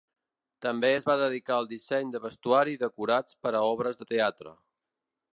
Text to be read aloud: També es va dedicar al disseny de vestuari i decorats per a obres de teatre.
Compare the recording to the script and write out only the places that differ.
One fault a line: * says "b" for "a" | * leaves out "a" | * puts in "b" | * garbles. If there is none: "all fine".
all fine